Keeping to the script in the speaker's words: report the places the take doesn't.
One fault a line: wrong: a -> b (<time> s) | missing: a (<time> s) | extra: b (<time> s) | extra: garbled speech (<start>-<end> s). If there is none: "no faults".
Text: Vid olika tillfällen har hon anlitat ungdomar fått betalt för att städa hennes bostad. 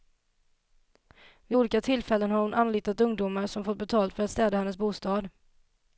extra: som (3.5 s)